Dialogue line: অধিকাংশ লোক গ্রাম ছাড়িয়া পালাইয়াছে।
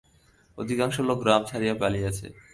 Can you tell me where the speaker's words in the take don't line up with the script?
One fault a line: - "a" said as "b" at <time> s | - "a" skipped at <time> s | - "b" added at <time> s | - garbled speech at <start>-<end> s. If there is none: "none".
none